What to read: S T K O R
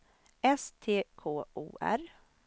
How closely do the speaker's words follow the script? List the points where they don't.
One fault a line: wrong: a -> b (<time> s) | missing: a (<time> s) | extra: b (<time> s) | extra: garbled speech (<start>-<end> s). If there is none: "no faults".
no faults